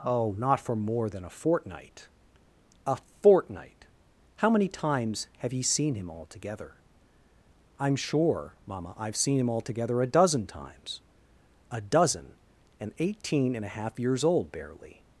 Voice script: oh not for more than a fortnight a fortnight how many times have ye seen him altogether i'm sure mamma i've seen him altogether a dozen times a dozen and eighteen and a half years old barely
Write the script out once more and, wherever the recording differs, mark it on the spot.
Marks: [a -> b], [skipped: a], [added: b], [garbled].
oh not for more than a fortnight a fortnight how many times have ye seen him altogether i'm sure mamma i've seen him altogether a dozen times a dozen and eighteen and a half years old barely